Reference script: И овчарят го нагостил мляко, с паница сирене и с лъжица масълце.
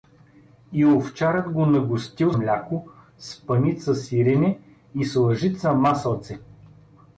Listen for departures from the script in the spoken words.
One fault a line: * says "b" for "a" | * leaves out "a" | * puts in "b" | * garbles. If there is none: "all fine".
all fine